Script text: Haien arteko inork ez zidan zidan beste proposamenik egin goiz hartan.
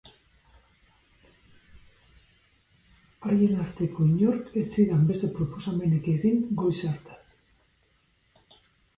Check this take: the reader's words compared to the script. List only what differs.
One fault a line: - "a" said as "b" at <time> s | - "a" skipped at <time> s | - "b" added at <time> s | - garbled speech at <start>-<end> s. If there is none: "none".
- "zidan" skipped at 5.0 s